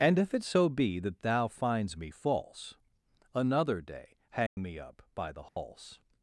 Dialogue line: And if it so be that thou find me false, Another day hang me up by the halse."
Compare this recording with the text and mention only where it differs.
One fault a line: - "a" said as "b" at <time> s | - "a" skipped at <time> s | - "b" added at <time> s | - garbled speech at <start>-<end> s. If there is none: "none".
- "find" said as "finds" at 1.5 s